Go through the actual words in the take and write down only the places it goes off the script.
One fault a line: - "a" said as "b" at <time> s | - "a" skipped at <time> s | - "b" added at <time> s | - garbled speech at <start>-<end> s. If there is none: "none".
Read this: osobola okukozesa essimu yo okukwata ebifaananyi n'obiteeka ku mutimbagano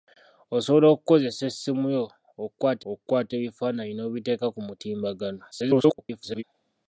- "okukwata" added at 2.9 s
- garbled speech at 5.5-6.4 s